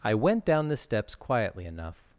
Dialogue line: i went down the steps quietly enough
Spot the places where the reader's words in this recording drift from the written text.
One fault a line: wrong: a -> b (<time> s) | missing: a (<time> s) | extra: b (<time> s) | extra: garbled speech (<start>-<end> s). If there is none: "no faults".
no faults